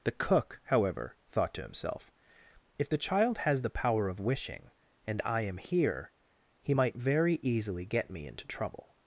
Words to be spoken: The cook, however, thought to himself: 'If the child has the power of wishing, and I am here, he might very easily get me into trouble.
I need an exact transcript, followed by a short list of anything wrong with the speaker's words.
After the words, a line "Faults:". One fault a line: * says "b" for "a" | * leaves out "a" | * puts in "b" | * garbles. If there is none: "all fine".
The cook, however, thought to himself: 'If the child has the power of wishing, and I am here, he might very easily get me into trouble.
Faults:
all fine